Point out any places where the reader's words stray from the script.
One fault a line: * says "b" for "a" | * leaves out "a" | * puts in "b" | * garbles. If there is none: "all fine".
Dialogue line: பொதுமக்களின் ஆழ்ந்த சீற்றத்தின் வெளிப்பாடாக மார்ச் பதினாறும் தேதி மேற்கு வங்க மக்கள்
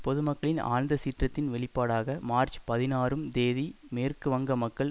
all fine